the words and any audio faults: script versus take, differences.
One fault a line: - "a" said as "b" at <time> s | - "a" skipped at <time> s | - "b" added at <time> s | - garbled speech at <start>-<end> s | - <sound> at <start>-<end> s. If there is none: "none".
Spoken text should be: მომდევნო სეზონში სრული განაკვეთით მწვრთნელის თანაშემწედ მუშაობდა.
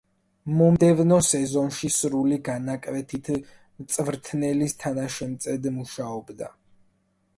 none